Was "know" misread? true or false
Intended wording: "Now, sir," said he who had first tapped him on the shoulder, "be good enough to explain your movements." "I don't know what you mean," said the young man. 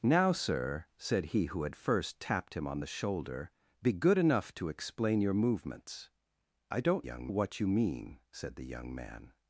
true